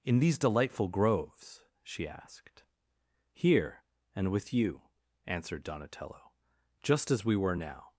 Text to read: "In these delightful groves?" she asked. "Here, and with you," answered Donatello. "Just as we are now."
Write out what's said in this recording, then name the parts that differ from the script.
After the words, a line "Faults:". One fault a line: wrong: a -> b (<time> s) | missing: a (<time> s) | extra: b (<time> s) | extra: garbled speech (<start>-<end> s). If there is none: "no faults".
"In these delightful groves?" she asked. "Here, and with you," answered Donatello. "Just as we were now."
Faults:
wrong: are -> were (7.3 s)